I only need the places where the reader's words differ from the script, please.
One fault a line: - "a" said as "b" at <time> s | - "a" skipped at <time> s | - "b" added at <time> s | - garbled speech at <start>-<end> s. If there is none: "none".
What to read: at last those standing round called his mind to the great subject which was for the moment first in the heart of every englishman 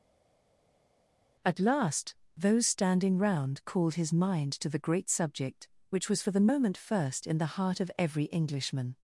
none